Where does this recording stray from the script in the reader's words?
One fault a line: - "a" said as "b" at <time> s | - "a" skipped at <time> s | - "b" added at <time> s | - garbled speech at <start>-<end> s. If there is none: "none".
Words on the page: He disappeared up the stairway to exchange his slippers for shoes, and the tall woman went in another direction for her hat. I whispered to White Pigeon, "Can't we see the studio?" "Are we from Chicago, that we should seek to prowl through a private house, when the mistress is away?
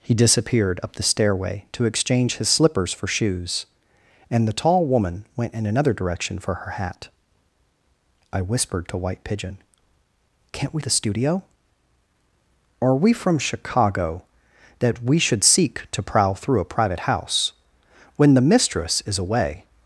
- "see" skipped at 10.8 s